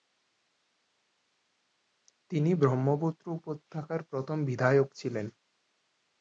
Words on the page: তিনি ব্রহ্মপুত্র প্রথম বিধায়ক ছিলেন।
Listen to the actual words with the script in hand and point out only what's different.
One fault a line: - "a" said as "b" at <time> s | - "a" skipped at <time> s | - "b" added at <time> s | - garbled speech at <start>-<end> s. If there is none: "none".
- "উপত্যকার" added at 3.4 s